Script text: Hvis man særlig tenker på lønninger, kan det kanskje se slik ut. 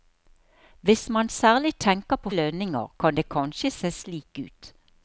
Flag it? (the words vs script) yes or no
no